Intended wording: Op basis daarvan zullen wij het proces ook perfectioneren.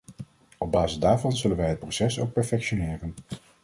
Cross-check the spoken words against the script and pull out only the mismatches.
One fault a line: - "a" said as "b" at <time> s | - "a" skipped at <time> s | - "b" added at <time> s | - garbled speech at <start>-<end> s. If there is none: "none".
none